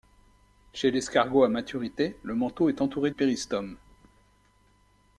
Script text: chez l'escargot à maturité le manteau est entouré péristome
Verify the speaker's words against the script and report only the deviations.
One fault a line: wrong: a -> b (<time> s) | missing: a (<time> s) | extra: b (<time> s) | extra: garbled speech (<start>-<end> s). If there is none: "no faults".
no faults